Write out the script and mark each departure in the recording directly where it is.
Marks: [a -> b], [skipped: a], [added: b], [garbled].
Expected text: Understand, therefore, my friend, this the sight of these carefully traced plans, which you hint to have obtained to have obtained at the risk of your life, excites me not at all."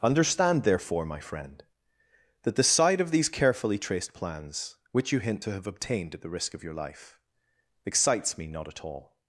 Understand, therefore, my friend, [this -> that] the sight of these carefully traced plans, which you hint to have obtained [skipped: to have obtained] at the risk of your life, excites me not at all."